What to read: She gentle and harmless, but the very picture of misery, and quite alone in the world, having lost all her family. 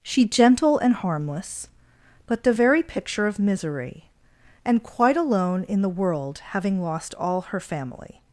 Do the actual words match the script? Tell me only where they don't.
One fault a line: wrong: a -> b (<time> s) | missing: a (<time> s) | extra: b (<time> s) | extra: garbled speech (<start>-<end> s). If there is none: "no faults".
no faults